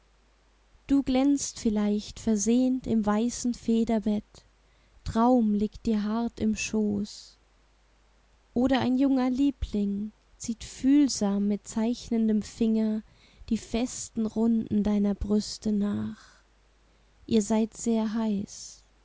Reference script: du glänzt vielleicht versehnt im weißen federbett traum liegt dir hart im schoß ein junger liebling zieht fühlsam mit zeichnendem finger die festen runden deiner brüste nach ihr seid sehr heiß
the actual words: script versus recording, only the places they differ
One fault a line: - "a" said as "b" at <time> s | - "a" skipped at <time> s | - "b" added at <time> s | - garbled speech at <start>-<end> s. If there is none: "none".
- "oder" added at 8.5 s